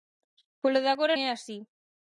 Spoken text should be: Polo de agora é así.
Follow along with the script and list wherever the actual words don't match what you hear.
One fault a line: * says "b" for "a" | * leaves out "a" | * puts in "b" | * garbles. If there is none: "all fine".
all fine